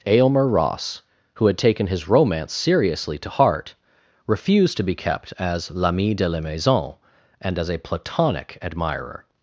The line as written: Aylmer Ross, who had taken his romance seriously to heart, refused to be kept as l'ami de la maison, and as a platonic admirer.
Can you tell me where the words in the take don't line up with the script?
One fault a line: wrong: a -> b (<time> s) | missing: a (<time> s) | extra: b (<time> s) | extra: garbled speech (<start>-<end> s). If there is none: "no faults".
no faults